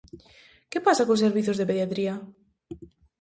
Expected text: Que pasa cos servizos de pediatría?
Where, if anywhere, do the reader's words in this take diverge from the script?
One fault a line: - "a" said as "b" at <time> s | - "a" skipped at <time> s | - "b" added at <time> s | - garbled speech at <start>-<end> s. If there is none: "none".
none